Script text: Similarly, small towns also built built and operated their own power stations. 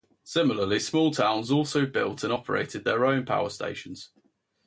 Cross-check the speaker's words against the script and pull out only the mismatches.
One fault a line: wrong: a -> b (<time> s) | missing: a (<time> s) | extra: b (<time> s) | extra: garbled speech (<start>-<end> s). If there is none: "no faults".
missing: built (2.2 s)